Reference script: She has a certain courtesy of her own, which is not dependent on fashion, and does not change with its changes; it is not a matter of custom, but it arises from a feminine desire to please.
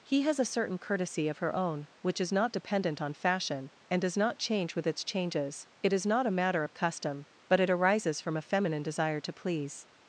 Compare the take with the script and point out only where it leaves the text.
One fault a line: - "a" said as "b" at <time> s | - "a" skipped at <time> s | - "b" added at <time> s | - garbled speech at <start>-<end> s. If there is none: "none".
- "She" said as "He" at 0.0 s